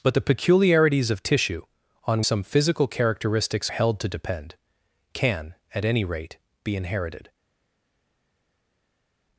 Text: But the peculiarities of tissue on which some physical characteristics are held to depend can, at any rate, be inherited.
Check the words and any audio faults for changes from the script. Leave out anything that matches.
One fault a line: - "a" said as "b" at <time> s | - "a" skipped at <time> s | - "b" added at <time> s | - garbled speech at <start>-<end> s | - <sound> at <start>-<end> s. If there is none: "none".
- "which" skipped at 2.2 s
- "are" skipped at 3.7 s